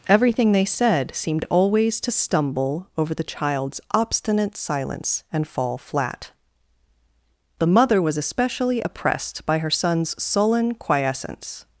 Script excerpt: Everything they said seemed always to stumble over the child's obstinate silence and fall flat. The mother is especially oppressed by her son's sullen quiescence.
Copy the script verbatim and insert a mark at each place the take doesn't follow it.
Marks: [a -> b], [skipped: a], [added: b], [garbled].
Everything they said seemed always to stumble over the child's obstinate silence and fall flat. The mother [is -> was] especially oppressed by her son's sullen quiescence.